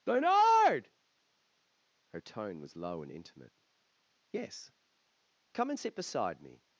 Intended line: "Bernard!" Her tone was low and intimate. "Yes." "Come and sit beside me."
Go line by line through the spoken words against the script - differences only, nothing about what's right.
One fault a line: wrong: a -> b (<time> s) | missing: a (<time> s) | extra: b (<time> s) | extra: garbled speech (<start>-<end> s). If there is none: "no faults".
no faults